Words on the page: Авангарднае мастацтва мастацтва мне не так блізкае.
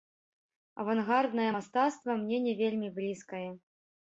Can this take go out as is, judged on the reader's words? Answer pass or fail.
fail